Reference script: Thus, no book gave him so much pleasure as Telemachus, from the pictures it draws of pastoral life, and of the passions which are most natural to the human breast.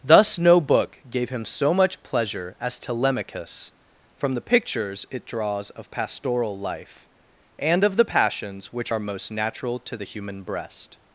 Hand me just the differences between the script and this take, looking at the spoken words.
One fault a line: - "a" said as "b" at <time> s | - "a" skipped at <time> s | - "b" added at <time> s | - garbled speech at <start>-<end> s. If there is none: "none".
none